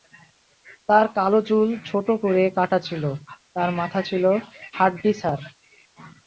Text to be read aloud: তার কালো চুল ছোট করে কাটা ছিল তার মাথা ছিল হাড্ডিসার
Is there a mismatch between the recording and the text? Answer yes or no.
no